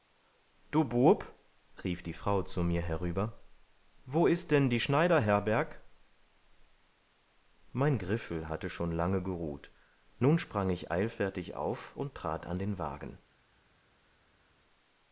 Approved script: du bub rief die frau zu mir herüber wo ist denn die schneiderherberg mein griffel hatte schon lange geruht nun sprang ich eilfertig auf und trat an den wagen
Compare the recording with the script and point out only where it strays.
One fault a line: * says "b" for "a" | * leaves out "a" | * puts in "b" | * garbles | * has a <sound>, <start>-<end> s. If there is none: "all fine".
all fine